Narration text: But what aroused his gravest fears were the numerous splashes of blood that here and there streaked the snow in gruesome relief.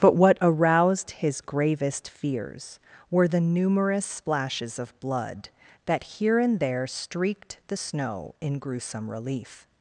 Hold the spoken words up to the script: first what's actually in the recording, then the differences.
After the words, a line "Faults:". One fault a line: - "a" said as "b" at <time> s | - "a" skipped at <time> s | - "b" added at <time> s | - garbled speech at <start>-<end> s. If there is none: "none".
But what aroused his gravest fears were the numerous splashes of blood that here and there streaked the snow in gruesome relief.
Faults:
none